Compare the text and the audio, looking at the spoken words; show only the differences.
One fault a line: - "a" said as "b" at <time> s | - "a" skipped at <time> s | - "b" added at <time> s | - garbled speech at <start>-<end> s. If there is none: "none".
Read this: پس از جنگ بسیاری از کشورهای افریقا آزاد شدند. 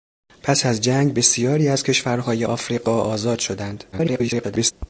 - garbled speech at 3.9-4.7 s